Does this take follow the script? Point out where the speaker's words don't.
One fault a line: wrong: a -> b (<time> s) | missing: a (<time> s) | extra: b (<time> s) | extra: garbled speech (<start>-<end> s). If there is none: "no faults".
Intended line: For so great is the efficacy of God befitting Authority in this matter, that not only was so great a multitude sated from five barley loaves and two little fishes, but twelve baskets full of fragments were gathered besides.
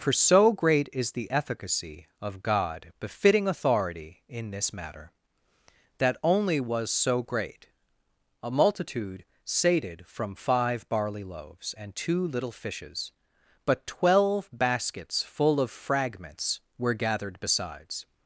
missing: not (6.2 s)